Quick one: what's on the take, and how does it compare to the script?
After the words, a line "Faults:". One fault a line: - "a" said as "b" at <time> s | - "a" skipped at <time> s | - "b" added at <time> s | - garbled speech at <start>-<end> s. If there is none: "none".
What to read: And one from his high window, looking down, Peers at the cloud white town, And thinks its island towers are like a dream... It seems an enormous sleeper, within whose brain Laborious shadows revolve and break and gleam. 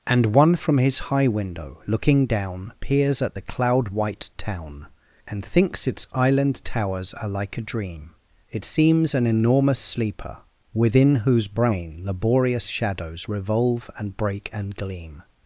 And one from his high window, looking down, Peers at the cloud white town, And thinks its island towers are like a dream... It seems an enormous sleeper, within whose brain Laborious shadows revolve and break and gleam.
Faults:
none